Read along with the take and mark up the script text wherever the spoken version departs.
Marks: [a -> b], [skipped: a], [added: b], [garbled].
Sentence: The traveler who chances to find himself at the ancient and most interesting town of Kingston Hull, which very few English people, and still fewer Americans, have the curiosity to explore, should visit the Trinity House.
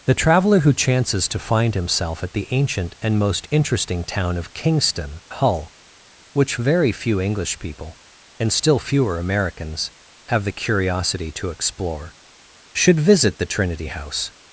The traveler who chances to find himself at the ancient and most interesting town of Kingston Hull, which very few English people, and still fewer Americans, have the curiosity to explore, should visit the Trinity House.